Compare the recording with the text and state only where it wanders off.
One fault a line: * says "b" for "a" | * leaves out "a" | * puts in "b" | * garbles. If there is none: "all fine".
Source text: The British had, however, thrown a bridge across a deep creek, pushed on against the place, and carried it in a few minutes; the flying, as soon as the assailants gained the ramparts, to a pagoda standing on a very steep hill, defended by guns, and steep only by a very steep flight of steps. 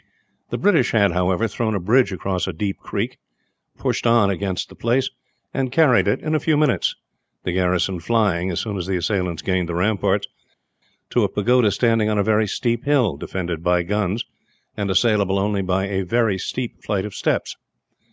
* puts in "garrison"
* says "assailable" for "steep"